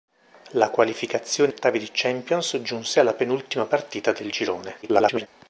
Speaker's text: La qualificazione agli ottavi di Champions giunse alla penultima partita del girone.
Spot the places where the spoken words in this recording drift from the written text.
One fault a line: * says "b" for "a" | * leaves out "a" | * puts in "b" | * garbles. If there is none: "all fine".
* leaves out "agli"
* garbles